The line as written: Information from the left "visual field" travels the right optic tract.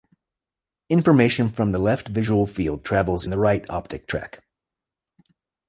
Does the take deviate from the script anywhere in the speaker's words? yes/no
no